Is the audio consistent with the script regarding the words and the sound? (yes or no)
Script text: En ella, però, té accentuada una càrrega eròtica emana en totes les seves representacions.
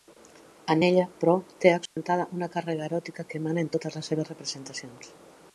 no